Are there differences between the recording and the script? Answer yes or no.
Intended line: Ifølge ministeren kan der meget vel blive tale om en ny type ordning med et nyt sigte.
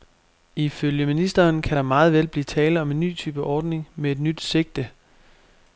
no